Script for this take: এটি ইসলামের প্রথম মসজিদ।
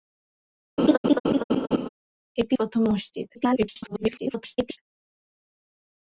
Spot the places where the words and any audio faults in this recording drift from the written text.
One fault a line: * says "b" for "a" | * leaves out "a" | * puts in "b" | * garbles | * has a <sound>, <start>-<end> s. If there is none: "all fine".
* has a laugh, 0.8-1.9 s
* leaves out "ইসলামের"
* garbles